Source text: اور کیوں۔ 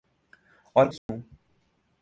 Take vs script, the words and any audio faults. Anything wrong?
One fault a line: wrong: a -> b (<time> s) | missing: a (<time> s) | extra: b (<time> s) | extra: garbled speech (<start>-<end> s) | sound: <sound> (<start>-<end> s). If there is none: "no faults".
sound: dropout (1.0-1.1 s)